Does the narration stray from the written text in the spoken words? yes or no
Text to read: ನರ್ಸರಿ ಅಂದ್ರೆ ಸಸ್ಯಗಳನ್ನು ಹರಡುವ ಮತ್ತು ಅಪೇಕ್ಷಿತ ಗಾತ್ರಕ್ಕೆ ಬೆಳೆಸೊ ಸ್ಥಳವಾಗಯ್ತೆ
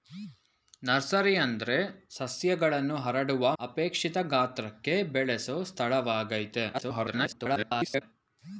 yes